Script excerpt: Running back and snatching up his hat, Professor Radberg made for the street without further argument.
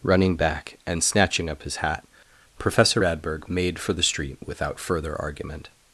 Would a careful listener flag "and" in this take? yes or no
no